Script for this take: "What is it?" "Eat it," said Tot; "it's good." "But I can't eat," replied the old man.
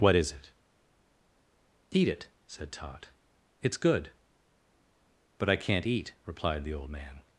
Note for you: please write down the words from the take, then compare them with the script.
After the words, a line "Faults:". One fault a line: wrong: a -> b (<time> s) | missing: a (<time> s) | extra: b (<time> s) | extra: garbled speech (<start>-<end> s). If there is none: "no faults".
"What is it?" "Eat it," said Tot; "it's good." "But I can't eat," replied the old man.
Faults:
no faults